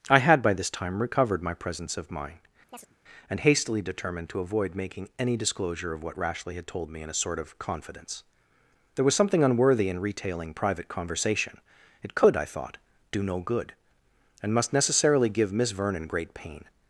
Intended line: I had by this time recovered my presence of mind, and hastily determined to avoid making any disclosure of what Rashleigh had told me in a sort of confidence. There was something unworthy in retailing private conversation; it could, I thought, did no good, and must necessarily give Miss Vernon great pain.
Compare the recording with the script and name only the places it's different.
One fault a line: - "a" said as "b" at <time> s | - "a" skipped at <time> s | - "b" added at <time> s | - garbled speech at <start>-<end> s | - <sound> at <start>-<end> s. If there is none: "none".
- chirp at 2.7-3.0 s
- "did" said as "do" at 13.1 s